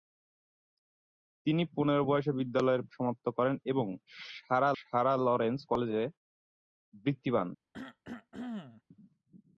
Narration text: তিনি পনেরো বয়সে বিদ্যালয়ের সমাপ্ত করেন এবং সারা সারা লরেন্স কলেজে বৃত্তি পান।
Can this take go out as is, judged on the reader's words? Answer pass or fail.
pass